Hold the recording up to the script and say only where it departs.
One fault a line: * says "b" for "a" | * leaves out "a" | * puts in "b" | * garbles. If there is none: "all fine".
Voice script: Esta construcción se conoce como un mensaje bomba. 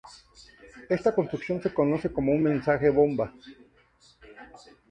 all fine